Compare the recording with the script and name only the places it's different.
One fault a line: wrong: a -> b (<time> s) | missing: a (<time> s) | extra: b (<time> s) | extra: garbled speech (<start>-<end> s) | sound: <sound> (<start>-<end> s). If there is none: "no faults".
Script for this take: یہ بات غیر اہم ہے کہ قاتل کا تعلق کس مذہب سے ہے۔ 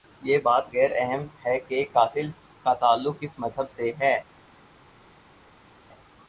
no faults